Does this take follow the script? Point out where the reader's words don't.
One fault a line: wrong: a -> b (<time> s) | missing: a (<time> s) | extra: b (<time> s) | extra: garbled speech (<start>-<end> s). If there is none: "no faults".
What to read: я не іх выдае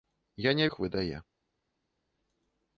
no faults